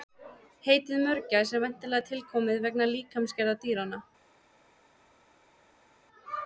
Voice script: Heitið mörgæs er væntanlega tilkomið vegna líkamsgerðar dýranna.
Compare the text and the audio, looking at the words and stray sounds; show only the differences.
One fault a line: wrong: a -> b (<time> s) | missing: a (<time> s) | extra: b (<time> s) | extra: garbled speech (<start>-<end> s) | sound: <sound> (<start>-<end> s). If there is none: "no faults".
no faults